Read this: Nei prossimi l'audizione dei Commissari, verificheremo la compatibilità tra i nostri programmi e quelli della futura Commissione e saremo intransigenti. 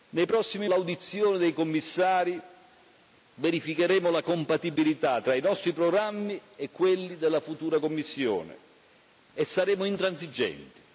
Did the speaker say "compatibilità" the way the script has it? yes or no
yes